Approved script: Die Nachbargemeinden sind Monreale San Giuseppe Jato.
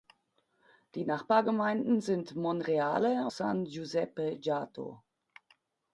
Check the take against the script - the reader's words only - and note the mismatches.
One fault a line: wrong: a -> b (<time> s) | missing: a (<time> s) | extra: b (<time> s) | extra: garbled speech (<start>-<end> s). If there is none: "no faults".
no faults